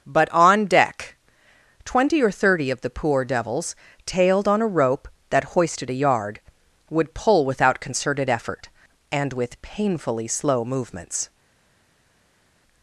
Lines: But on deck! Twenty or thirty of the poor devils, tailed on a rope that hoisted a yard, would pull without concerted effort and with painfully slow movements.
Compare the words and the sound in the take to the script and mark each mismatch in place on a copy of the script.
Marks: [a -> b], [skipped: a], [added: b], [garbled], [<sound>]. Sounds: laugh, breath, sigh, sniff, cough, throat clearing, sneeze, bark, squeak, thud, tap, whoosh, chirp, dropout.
But on deck! Twenty or thirty of the poor devils, tailed on a rope that hoisted a yard, would pull without concerted effort and with painfully slow movements.